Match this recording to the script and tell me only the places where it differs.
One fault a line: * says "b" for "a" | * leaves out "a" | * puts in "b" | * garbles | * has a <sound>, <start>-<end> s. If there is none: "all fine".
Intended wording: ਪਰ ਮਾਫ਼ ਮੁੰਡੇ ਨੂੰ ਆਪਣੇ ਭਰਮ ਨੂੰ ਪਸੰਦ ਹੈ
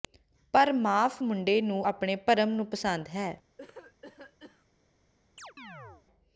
* has a cough, 3.6-4.7 s
* has a chirp, 5.4-6.1 s